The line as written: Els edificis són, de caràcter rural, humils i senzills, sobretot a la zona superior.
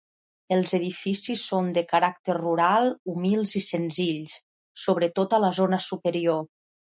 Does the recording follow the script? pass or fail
pass